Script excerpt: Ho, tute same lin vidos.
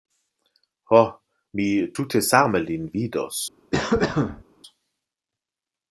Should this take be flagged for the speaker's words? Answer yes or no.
yes